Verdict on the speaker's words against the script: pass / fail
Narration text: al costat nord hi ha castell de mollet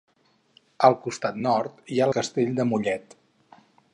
pass